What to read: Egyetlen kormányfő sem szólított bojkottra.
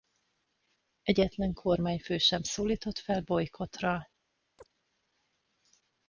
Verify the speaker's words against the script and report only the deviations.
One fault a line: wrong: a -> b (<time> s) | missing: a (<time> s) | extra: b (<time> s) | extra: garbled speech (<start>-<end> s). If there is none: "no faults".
extra: fel (3.0 s)